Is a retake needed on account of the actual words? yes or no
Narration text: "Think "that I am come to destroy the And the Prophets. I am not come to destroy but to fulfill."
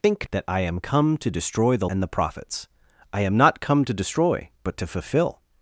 no